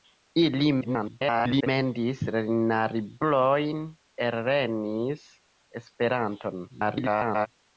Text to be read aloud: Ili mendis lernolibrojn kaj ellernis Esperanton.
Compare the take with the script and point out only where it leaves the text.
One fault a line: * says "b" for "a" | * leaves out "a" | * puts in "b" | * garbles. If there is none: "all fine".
* garbles
* leaves out "kaj"
* garbles